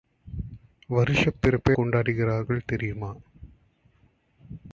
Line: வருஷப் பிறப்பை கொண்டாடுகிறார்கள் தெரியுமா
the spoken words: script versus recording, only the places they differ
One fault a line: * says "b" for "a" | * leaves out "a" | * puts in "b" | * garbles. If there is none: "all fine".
all fine